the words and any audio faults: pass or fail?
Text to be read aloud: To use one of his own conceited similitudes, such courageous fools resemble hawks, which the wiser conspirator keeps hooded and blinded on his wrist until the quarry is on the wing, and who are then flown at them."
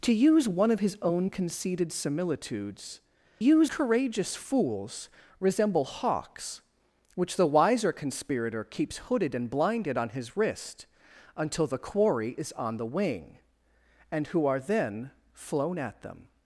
fail